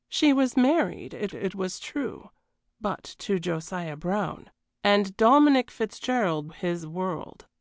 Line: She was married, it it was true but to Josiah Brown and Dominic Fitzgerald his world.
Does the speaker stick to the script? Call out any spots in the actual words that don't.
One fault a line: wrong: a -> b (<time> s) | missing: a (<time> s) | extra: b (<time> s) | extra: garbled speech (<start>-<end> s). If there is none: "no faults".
no faults